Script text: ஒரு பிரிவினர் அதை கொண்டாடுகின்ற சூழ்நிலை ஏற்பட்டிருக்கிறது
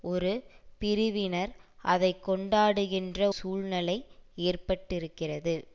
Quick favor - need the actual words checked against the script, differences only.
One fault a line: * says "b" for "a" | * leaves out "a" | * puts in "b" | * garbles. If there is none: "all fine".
all fine